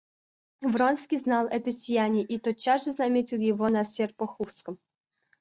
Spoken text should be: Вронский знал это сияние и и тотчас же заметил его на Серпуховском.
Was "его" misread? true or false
false